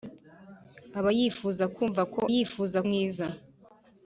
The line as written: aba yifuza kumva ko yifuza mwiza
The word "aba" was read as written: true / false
true